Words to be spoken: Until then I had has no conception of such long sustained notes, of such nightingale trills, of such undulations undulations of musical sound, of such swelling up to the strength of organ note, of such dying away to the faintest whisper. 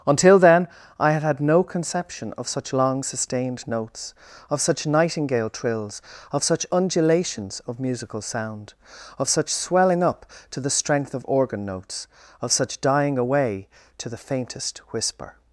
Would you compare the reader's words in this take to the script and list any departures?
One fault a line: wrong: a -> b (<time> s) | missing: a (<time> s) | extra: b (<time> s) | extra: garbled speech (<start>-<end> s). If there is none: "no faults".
wrong: has -> had (1.2 s)
missing: undulations (7.6 s)
wrong: note -> notes (11.6 s)